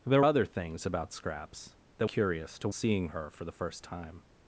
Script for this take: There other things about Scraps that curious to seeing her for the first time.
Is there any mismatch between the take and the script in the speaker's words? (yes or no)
no